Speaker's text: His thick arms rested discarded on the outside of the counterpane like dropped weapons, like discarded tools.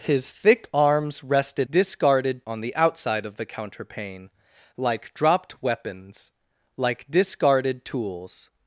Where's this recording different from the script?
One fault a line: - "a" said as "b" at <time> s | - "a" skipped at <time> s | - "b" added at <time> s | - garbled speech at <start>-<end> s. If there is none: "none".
none